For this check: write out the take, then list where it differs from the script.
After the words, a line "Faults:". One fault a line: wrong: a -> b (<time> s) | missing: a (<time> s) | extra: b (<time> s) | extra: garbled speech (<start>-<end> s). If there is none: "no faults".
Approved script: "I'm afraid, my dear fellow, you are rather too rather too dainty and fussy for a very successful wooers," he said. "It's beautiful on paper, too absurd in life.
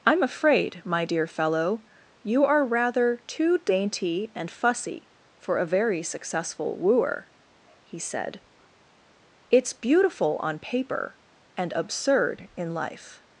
"I'm afraid, my dear fellow, you are rather too dainty and fussy for a very successful wooer," he said. "It's beautiful on paper, and absurd in life.
Faults:
missing: rather too (3.6 s)
wrong: wooers -> wooer (6.8 s)
wrong: too -> and (11.6 s)